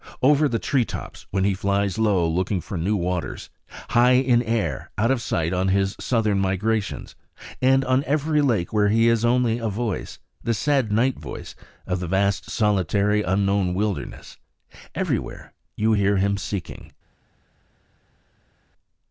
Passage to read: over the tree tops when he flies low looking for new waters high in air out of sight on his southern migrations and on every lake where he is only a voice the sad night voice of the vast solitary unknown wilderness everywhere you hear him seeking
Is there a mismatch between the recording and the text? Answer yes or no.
no